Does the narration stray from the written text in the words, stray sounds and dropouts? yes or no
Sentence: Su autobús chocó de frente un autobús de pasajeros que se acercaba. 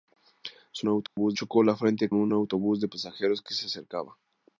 yes